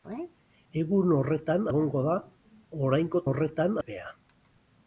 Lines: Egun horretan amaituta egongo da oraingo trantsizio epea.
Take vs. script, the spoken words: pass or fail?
fail